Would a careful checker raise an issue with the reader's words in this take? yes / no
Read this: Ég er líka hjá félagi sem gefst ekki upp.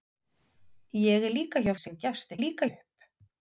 yes